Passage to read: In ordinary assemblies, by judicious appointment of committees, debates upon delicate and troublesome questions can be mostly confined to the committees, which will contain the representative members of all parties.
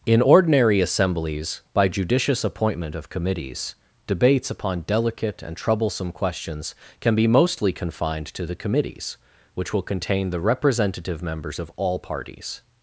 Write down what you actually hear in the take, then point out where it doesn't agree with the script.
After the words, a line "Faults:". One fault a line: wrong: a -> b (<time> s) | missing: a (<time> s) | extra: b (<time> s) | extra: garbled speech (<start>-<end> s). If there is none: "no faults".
In ordinary assemblies, by judicious appointment of committees, debates upon delicate and troublesome questions can be mostly confined to the committees, which will contain the representative members of all parties.
Faults:
no faults